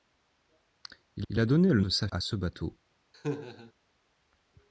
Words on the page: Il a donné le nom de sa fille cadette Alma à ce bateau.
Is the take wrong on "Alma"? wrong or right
wrong